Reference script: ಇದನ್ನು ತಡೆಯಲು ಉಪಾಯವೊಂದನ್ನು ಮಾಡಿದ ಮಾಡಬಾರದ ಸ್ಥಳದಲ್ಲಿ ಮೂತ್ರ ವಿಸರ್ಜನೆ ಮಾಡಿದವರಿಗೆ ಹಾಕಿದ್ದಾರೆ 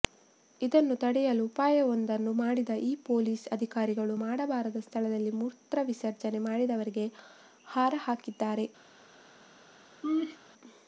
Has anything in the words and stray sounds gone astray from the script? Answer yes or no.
yes